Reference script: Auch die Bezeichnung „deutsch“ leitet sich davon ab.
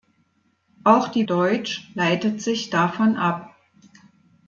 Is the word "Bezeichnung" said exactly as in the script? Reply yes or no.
no